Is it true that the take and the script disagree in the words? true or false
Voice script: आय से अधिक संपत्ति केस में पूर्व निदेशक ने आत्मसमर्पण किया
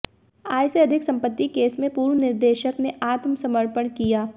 false